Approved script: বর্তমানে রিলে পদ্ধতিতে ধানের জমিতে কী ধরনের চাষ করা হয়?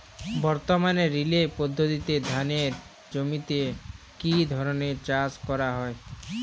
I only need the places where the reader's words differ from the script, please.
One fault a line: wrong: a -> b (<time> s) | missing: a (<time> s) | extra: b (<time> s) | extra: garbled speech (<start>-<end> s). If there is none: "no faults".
no faults